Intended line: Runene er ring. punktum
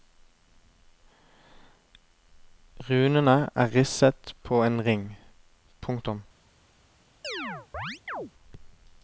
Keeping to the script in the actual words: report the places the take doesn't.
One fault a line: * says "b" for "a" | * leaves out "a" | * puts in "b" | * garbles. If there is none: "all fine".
* puts in "risset på en"